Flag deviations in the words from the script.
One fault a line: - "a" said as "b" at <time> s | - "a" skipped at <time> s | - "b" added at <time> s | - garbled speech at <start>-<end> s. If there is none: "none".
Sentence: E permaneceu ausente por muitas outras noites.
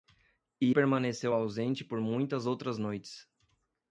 none